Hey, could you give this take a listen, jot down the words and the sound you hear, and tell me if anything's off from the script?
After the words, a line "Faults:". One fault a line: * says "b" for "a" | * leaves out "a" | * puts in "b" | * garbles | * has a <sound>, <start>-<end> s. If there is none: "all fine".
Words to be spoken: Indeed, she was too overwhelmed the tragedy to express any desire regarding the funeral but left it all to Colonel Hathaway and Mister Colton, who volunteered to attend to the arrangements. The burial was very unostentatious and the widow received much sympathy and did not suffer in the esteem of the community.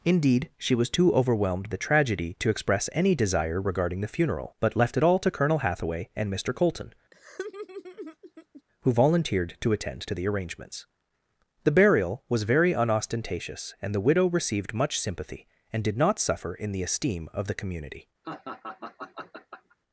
Indeed, she was too overwhelmed the tragedy to express any desire regarding the funeral but left it all to Colonel Hathaway and Mister Colton, who volunteered to attend to the arrangements. The burial was very unostentatious and the widow received much sympathy and did not suffer in the esteem of the community.
Faults:
* has a laugh, 7.1-8.6 s
* has a laugh, 18.2-19.8 s